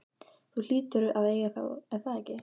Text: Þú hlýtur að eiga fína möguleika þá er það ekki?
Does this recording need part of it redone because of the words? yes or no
yes